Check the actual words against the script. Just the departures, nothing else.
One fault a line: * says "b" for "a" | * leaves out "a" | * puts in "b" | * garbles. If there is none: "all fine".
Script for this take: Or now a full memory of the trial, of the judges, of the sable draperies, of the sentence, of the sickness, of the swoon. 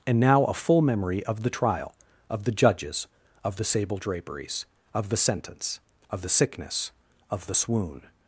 * says "And" for "Or"